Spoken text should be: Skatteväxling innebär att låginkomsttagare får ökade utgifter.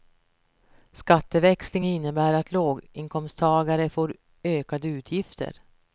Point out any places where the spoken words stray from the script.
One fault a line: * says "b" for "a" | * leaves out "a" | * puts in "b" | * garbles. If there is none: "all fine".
all fine